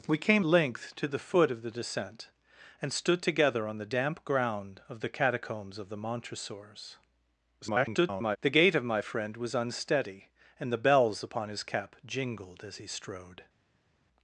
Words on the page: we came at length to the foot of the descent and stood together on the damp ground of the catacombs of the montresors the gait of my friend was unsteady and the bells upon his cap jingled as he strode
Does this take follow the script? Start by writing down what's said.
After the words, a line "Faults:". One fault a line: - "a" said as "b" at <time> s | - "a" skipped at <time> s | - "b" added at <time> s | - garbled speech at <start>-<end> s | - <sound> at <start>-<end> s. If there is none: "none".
we came length to the foot of the descent and stood together on the damp ground of the catacombs of the montresors [garbled] the gait of my friend was unsteady and the bells upon his cap jingled as he strode
Faults:
- "at" skipped at 0.5 s
- garbled speech at 7.6-8.4 s